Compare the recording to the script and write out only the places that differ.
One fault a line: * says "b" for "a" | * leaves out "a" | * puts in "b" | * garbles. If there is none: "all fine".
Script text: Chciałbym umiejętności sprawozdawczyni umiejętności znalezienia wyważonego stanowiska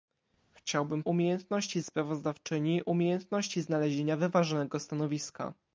all fine